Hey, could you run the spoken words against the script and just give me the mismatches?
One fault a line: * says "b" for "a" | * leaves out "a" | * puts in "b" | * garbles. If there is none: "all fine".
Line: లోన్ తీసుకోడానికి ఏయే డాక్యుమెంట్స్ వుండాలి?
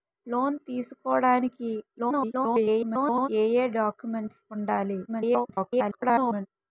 * garbles
* garbles